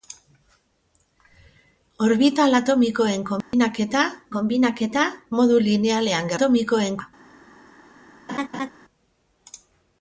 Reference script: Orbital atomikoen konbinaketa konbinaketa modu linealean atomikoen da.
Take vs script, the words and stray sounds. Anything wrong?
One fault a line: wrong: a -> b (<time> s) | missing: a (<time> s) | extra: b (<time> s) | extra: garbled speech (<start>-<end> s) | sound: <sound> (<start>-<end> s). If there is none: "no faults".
sound: dropout (3.4-3.5 s)
sound: laugh (8.3-8.7 s)